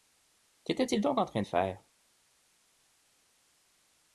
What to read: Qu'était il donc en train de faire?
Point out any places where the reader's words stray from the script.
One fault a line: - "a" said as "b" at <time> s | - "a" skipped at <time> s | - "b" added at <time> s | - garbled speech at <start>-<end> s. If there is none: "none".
none